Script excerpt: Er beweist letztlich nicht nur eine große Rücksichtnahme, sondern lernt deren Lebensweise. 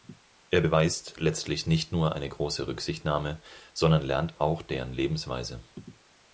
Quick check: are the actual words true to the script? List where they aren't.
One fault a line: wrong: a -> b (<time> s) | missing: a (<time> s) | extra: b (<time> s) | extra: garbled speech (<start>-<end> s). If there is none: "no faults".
extra: auch (4.4 s)